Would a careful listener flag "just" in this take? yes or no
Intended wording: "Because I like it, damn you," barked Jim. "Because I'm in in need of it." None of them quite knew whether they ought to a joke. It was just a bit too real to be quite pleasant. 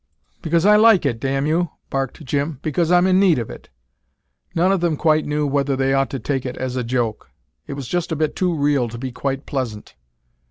no